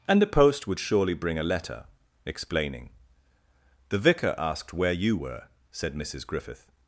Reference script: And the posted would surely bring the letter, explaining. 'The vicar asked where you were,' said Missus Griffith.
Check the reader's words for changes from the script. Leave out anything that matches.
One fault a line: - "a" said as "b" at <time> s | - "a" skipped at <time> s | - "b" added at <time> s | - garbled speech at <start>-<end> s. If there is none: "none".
- "posted" said as "post" at 0.3 s
- "the" said as "a" at 1.4 s